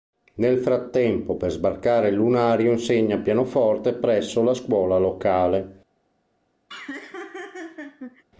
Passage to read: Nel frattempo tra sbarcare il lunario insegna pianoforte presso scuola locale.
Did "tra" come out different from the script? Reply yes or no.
yes